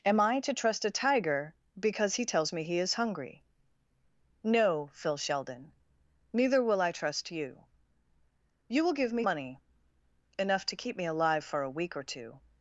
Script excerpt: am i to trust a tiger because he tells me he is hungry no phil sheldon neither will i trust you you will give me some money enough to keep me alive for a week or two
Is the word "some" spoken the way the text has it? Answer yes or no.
no